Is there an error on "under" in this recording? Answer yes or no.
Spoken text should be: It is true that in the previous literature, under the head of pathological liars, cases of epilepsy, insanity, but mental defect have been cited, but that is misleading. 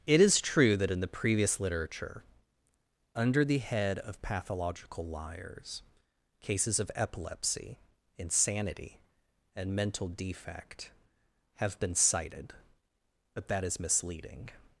no